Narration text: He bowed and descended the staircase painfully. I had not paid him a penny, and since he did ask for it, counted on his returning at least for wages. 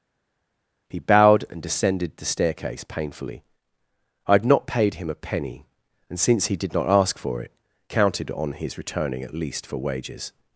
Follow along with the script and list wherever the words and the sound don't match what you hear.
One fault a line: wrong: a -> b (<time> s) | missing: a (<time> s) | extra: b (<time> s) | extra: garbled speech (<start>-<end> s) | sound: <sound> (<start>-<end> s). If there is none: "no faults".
extra: not (6.7 s)